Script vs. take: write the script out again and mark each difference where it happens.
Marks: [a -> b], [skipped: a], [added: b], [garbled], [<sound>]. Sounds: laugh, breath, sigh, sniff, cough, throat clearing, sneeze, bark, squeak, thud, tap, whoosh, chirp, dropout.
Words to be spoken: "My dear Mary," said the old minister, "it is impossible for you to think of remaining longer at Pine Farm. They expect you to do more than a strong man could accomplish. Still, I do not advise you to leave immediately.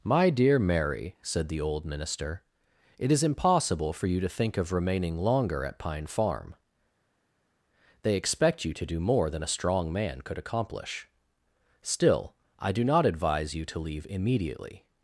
"My dear Mary," said the old minister, "it is impossible for you to think of remaining longer at Pine Farm. They expect you to do more than a strong man could accomplish. Still, I do not advise you to leave immediately.